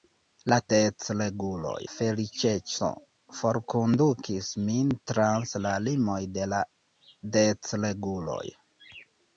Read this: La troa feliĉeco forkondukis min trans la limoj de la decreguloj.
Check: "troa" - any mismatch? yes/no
yes